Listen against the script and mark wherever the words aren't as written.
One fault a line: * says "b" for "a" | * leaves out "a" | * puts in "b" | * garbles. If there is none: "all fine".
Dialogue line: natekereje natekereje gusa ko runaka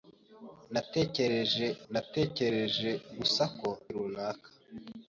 all fine